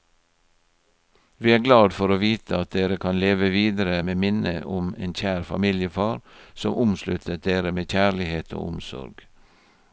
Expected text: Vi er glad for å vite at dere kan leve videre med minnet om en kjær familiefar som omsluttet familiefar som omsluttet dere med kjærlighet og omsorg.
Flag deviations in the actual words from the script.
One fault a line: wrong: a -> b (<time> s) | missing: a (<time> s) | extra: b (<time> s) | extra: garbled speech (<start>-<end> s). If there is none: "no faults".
missing: familiefar som omsluttet (7.4 s)